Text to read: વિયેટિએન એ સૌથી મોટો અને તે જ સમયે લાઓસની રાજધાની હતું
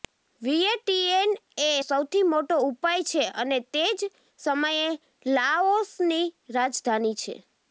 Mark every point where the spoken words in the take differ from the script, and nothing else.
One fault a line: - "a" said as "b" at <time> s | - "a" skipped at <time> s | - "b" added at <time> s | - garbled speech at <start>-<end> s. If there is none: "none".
- "ઉપાય છે" added at 2.7 s
- "હતું" said as "છે" at 7.2 s